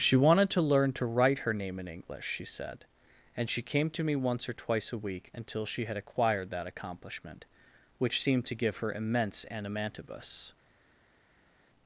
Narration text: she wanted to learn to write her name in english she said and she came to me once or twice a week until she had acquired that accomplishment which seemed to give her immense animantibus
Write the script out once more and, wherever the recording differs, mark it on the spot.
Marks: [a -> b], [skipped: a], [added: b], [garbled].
she wanted to learn to write her name in english she said and she came to me once or twice a week until she had acquired that accomplishment which seemed to give her immense animantibus